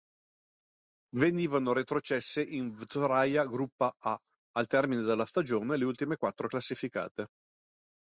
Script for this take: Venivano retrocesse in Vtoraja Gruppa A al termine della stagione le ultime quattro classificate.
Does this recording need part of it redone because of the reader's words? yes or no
no